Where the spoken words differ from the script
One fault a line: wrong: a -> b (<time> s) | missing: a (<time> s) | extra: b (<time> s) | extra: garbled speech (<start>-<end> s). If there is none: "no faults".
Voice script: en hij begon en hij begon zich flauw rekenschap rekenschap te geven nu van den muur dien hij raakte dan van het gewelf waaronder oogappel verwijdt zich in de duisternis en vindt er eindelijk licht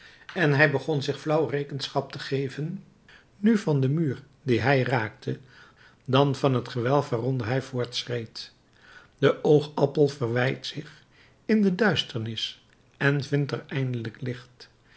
missing: en hij begon (1.0 s)
missing: rekenschap (2.1 s)
extra: hij voortschreed de (7.5 s)